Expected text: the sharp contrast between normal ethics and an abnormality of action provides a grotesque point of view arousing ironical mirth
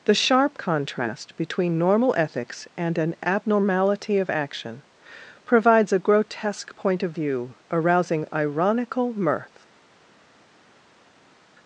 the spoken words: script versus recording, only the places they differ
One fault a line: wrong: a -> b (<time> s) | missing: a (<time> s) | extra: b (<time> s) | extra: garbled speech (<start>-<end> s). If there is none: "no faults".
no faults